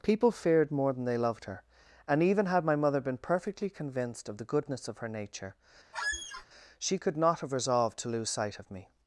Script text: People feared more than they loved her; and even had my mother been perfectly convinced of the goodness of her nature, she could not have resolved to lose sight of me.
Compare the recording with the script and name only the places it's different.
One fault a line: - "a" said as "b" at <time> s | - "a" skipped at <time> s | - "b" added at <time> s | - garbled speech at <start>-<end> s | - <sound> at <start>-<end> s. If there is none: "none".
- squeak at 5.9-6.5 s